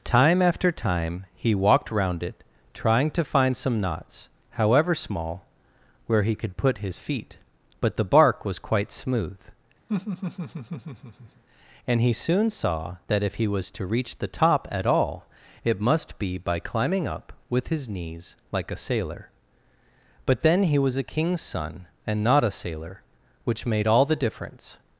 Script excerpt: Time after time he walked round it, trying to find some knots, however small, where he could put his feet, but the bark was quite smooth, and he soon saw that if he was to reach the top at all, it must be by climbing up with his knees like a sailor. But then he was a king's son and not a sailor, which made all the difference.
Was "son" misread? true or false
false